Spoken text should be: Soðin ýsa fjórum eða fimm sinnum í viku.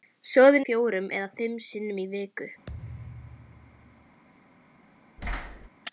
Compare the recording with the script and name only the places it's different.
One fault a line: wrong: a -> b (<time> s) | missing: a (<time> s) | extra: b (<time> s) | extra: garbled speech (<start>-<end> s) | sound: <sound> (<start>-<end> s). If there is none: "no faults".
missing: ýsa (0.6 s)
sound: thud (2.7-4.2 s)
sound: thud (5.2-5.7 s)